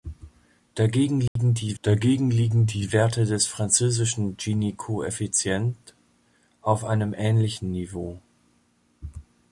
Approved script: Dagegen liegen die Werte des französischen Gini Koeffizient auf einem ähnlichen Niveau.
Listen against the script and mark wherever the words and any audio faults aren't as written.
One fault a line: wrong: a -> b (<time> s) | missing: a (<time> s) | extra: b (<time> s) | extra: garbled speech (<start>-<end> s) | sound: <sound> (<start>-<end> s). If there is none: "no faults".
sound: dropout (1.3-1.4 s)
extra: dagegen liegen die (1.8 s)